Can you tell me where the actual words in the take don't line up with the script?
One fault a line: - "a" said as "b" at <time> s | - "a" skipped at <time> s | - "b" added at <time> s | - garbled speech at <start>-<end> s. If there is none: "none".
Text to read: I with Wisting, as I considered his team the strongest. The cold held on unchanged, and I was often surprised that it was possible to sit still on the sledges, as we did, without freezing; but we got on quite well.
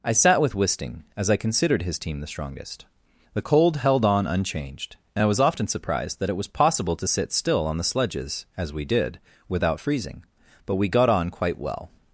- "sat" added at 0.1 s